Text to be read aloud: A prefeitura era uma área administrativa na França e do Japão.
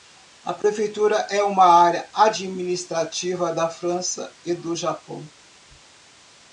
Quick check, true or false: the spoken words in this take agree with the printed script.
false